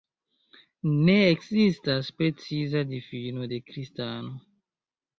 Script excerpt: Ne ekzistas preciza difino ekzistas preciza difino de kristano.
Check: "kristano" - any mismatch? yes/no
no